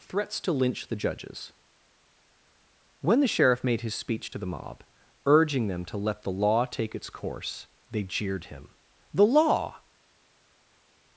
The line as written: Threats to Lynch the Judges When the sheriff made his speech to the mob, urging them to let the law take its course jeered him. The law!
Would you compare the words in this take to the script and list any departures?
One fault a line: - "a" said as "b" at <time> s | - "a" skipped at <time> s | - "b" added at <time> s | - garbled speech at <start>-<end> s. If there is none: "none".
- "they" added at 7.9 s